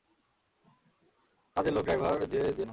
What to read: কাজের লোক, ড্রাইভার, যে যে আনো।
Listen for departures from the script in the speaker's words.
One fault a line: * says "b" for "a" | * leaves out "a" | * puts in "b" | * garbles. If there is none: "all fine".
all fine